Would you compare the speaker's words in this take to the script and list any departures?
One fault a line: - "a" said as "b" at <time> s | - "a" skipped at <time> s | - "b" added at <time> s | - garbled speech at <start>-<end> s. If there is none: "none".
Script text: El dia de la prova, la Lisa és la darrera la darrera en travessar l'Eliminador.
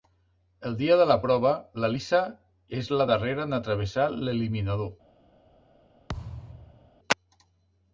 - "la darrera" skipped at 3.5 s